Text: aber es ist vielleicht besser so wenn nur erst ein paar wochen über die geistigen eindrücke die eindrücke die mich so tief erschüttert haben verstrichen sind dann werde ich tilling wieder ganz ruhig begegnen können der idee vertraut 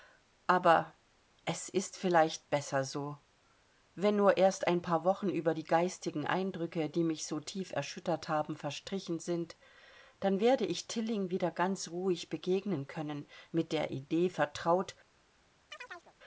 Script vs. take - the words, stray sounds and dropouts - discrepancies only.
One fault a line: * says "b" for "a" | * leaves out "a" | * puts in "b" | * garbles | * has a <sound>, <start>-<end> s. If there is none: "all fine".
* leaves out "eindrücke die"
* puts in "mit"
* has a chirp, 15.7-16.2 s